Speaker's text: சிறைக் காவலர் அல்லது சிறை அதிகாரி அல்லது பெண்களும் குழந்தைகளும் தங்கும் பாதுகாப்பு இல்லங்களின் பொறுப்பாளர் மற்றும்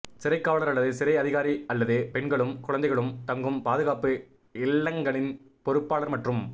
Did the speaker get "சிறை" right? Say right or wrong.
right